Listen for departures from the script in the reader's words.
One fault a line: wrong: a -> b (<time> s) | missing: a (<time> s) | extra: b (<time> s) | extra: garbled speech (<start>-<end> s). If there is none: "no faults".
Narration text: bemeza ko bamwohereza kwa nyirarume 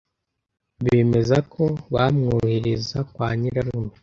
no faults